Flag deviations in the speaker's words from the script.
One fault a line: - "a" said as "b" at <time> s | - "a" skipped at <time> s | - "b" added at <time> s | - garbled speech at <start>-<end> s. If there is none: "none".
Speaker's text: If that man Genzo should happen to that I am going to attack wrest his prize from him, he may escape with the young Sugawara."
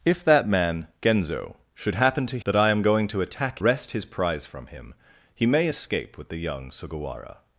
none